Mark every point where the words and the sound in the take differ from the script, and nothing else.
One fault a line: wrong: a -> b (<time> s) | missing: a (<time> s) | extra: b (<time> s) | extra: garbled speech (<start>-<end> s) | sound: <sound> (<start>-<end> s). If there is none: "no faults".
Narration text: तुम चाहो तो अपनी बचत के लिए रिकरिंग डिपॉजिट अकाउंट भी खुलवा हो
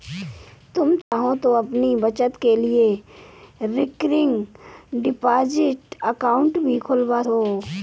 sound: dropout (1.0-1.1 s)